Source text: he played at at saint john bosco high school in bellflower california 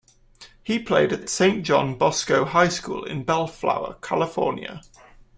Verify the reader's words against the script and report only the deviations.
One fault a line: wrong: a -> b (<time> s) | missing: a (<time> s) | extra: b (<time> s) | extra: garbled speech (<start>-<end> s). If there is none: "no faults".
no faults